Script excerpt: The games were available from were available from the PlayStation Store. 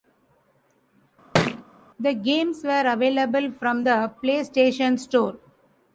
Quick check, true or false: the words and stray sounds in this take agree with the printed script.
false